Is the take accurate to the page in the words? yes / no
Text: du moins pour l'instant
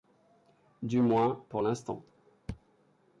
yes